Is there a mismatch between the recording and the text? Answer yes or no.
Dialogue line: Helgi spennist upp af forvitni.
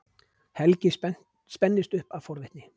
no